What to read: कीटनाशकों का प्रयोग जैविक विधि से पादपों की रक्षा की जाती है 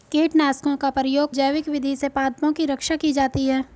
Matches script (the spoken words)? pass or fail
pass